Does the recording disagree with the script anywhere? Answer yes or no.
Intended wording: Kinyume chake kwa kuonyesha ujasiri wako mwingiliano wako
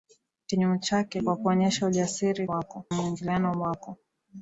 no